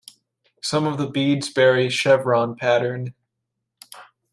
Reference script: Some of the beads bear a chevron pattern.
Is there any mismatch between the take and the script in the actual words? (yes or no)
no